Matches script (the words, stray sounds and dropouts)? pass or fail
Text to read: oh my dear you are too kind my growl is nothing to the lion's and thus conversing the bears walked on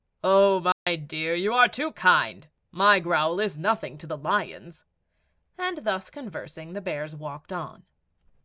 fail